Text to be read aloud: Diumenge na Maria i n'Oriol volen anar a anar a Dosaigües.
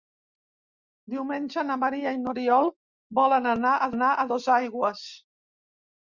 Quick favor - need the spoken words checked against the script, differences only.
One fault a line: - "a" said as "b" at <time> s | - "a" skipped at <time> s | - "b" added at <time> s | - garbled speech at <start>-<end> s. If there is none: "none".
none